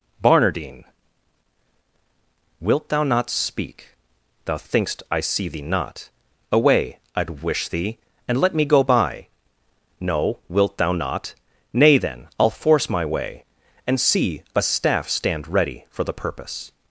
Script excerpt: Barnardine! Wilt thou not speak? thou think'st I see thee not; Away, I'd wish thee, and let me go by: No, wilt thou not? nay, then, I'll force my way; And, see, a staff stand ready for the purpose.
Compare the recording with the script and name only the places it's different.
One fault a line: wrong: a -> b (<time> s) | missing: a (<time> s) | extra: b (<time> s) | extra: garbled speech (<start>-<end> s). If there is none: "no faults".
no faults